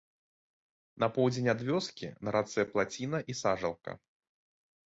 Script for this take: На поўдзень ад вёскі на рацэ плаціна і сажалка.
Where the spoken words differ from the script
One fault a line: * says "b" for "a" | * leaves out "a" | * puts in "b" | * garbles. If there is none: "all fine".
all fine